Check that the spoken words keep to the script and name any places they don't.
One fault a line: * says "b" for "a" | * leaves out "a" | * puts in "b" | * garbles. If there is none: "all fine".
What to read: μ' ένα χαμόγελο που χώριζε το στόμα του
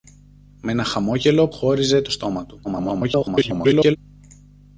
* leaves out "που"
* garbles